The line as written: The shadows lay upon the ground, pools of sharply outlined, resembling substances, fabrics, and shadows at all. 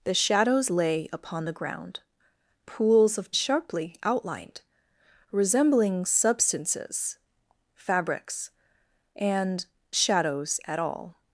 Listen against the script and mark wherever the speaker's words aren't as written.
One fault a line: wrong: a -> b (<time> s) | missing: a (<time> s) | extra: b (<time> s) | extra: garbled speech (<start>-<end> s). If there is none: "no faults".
no faults